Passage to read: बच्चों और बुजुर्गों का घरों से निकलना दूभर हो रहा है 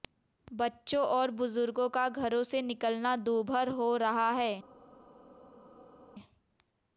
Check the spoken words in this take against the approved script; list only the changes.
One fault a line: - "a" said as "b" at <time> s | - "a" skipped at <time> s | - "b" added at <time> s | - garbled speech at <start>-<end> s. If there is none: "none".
none